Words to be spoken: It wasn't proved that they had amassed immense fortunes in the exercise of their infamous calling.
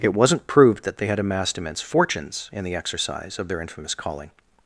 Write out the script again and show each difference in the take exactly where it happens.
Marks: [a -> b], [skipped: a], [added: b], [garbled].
It wasn't proved that they had amassed immense fortunes in the exercise of their infamous calling.